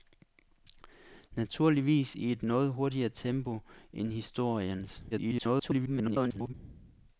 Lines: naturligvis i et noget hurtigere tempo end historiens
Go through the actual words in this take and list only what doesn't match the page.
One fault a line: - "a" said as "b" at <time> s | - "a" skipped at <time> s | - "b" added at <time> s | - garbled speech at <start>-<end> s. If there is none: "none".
- garbled speech at 5.1-6.5 s